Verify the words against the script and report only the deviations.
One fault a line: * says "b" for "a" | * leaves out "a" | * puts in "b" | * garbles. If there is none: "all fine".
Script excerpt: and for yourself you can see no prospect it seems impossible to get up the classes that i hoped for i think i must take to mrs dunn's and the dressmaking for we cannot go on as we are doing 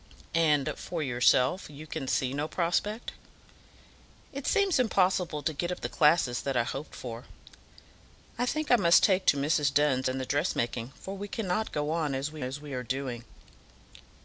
* puts in "as we"